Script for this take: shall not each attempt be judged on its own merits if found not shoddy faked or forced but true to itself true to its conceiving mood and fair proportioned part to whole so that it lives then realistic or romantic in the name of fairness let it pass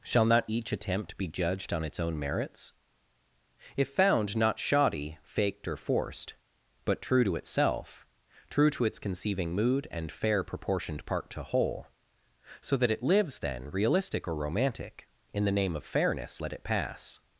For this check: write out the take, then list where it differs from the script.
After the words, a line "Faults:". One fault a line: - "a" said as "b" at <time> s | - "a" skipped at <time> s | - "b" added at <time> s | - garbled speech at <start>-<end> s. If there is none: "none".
shall not each attempt be judged on its own merits if found not shoddy faked or forced but true to itself true to its conceiving mood and fair proportioned part to whole so that it lives then realistic or romantic in the name of fairness let it pass
Faults:
none